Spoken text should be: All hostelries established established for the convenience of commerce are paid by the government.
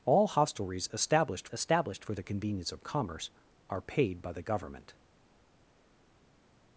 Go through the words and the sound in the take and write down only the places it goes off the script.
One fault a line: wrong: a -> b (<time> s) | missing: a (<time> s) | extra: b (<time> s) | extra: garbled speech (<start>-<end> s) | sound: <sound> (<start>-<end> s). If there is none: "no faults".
no faults